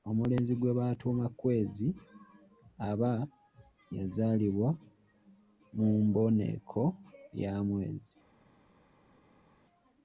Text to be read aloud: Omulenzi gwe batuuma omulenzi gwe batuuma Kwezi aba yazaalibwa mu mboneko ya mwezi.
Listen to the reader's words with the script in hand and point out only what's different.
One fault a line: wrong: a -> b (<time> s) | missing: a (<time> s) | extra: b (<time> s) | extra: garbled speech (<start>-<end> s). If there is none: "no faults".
missing: omulenzi gwe batuuma (1.2 s)